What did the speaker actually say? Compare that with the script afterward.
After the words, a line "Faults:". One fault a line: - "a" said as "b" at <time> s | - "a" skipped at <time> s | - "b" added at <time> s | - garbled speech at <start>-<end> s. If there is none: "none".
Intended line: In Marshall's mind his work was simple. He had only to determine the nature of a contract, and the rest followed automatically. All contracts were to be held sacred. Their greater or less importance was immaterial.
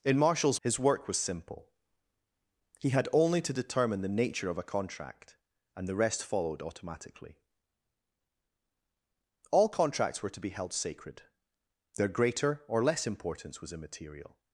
In Marshall's his work was simple. He had only to determine the nature of a contract, and the rest followed automatically. All contracts were to be held sacred. Their greater or less importance was immaterial.
Faults:
- "mind" skipped at 0.6 s